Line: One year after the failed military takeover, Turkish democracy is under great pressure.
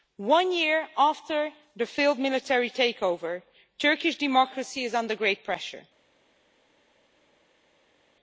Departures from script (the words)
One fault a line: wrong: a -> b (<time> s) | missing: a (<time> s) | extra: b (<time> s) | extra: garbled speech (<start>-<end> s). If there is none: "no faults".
no faults